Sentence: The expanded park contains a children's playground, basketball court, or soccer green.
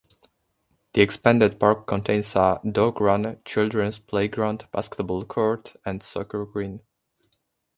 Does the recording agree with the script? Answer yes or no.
no